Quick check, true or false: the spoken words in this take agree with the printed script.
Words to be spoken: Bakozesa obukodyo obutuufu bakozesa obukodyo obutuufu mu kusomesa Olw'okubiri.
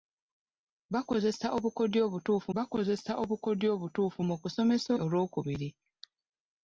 true